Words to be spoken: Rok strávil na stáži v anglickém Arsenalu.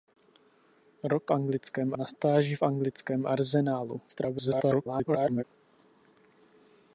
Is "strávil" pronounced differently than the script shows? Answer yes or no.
yes